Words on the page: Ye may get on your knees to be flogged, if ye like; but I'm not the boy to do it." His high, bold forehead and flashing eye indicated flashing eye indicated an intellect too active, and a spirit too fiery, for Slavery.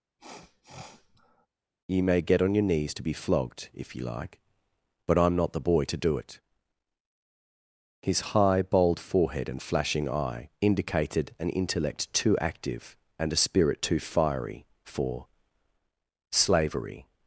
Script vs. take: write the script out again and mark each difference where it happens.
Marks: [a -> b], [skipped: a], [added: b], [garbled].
Ye may get on your knees to be flogged, if ye like; but I'm not the boy to do it." His high, bold forehead and flashing eye indicated [skipped: flashing eye indicated] an intellect too active, and a spirit too fiery, for Slavery.